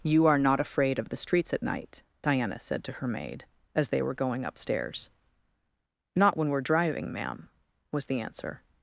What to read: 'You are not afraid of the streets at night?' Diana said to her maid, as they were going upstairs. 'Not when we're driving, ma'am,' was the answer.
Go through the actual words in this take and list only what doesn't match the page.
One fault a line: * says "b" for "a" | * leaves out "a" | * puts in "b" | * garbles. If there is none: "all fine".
all fine